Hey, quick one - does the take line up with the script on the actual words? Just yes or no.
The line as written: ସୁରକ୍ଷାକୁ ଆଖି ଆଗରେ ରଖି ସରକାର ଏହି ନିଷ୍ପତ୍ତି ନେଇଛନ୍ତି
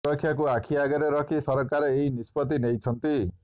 yes